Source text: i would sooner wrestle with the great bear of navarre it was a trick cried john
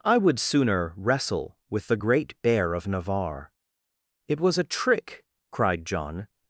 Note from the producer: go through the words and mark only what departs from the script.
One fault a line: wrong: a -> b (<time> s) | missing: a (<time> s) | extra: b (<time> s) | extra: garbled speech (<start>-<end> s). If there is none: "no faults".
no faults